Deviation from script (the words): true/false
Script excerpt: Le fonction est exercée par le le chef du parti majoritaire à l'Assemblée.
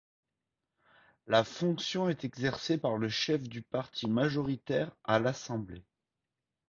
true